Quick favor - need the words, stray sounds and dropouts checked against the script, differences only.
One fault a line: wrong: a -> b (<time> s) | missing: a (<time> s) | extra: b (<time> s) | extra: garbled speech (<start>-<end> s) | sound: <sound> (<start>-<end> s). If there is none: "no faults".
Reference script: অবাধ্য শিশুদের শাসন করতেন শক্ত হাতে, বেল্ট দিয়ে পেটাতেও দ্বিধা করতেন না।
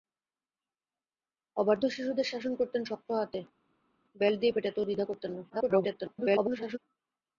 extra: garbled speech (5.5-6.8 s)